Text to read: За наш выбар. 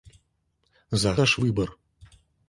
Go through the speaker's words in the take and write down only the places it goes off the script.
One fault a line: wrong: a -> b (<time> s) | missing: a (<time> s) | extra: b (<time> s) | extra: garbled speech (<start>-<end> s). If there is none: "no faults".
no faults